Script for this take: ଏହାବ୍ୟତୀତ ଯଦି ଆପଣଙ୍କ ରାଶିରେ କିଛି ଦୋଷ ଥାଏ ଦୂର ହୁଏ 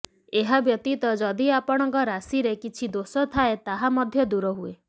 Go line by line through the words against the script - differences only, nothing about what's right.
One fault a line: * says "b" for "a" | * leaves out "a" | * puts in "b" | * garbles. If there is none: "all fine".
* puts in "ତାହା ମଧ୍ୟ"